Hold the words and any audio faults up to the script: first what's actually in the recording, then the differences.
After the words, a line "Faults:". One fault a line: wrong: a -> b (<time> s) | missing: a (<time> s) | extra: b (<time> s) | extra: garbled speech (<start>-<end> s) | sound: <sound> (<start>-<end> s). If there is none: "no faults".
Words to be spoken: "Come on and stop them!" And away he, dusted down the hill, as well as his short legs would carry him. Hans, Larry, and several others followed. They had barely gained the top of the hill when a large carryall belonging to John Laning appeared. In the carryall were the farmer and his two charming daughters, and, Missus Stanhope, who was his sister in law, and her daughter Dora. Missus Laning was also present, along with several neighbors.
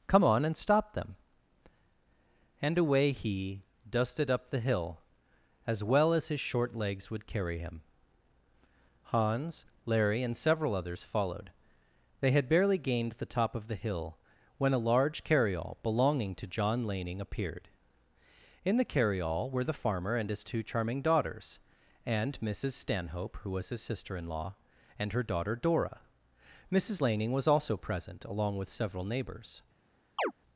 "Come on and stop them!" And away he, dusted up the hill, as well as his short legs would carry him. Hans, Larry, and several others followed. They had barely gained the top of the hill when a large carryall belonging to John Laning appeared. In the carryall were the farmer and his two charming daughters, and, Missus Stanhope, who was his sister in law, and her daughter Dora. Missus Laning was also present, along with several neighbors.
Faults:
wrong: down -> up (4.3 s)
sound: chirp (30.2-30.3 s)